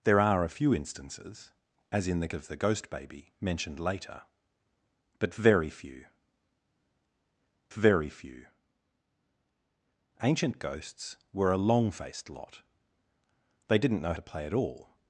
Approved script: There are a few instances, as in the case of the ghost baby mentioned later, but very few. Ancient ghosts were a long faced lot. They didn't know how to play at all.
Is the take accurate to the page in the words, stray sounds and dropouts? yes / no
no